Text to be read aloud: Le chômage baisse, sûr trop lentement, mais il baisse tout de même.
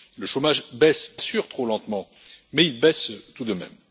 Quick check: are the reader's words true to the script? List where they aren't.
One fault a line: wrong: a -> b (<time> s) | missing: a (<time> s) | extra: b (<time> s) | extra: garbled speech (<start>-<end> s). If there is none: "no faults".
no faults